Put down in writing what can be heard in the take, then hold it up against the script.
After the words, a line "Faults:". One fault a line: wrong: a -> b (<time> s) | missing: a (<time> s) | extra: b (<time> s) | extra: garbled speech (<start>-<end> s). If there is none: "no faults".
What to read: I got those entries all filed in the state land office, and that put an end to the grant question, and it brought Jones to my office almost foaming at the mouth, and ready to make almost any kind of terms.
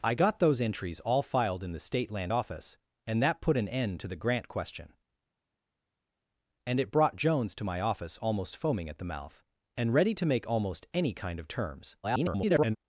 I got those entries all filed in the state land office, and that put an end to the grant question, and it brought Jones to my office almost foaming at the mouth, and ready to make almost any kind of terms. [garbled]
Faults:
extra: garbled speech (12.0-12.8 s)